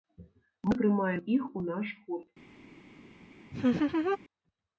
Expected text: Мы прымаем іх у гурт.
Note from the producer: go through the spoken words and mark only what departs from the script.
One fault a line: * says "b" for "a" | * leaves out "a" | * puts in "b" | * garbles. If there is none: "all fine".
* puts in "наш"